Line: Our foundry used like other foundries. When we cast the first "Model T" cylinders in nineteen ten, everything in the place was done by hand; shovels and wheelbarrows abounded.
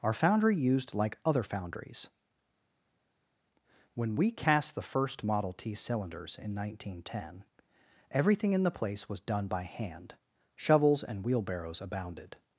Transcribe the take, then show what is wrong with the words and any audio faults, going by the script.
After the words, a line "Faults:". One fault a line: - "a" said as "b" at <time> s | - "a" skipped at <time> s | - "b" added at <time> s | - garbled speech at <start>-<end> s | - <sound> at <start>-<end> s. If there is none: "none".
Our foundry used like other foundries. When we cast the first "Model T" cylinders in nineteen ten, everything in the place was done by hand; shovels and wheelbarrows abounded.
Faults:
none